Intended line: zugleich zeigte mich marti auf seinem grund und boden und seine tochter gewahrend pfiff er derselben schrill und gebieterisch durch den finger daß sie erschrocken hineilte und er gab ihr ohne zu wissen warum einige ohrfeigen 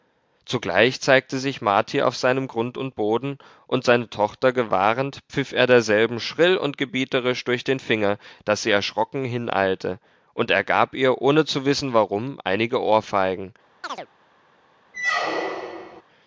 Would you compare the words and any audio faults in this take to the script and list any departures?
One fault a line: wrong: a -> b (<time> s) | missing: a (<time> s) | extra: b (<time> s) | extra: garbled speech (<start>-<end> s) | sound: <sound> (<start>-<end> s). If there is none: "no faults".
wrong: mich -> sich (1.4 s)
sound: chirp (13.8-14.1 s)
sound: squeak (14.9-16.0 s)